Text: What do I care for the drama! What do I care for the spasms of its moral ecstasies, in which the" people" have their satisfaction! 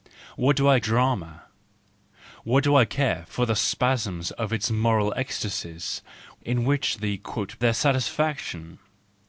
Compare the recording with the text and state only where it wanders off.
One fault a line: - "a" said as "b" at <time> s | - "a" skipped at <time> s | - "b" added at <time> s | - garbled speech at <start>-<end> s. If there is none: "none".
- "care for the" skipped at 0.8 s
- "people have" skipped at 7.2 s